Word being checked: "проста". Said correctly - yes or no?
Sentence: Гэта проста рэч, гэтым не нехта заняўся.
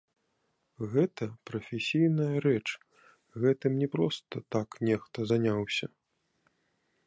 no